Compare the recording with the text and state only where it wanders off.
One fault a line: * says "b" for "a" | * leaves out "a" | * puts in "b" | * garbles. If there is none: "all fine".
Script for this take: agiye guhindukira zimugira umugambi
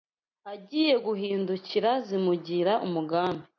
all fine